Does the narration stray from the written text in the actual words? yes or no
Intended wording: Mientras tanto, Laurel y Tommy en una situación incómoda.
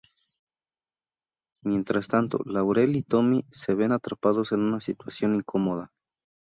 yes